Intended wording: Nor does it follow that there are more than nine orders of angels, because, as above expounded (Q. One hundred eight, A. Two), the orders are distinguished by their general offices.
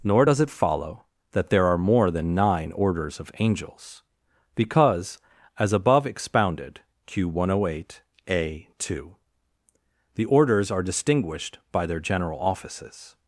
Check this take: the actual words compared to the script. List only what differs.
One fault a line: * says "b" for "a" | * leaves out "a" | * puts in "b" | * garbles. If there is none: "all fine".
all fine